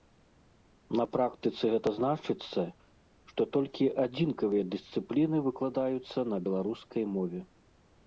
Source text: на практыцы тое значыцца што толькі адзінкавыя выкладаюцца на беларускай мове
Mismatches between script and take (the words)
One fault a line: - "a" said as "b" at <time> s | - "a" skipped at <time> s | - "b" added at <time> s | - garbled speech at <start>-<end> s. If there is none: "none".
- "тое" said as "гэта" at 1.7 s
- "дысцыпліны" added at 4.7 s